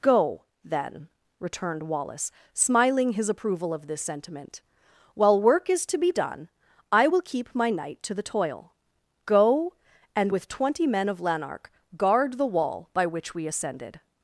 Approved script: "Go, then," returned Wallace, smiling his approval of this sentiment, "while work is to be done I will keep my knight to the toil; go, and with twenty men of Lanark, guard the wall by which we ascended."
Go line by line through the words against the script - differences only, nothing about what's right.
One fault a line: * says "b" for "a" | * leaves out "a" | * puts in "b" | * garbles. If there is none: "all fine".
all fine